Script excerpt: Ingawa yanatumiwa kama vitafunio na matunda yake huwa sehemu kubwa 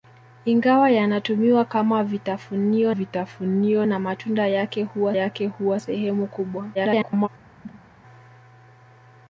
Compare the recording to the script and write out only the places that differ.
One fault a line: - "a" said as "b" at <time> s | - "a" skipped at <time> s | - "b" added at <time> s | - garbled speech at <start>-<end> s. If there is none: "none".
- "vitafunio" added at 2.9 s
- "yake huwa" added at 5.1 s
- garbled speech at 6.7-7.3 s